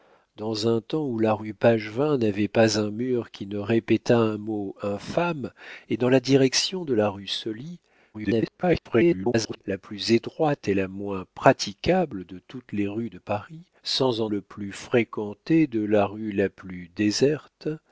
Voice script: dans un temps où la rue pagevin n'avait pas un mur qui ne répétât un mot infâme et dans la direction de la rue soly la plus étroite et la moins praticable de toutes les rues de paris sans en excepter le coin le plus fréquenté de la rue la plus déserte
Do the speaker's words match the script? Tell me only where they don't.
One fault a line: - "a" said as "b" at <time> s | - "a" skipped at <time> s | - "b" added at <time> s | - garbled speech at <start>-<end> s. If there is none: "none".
- garbled speech at 8.1-9.6 s
- "excepter le coin" skipped at 14.3 s